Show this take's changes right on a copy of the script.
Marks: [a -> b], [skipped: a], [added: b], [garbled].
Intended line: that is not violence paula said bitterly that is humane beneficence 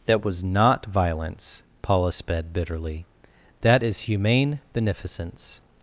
that [is -> was] not violence paula [said -> sped] bitterly that is humane beneficence